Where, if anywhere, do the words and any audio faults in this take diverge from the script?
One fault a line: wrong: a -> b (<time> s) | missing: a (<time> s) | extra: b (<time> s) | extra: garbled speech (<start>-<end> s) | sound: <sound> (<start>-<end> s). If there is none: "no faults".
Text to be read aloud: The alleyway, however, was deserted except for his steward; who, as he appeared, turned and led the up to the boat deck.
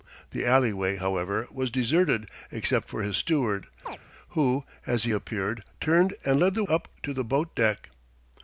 sound: chirp (3.9-4.0 s)